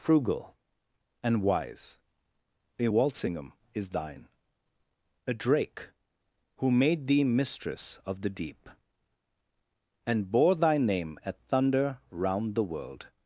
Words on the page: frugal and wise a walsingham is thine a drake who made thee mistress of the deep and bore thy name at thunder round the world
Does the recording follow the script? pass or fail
pass